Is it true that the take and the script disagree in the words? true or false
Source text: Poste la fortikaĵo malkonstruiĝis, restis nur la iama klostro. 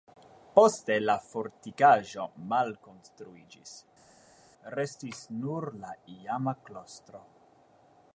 false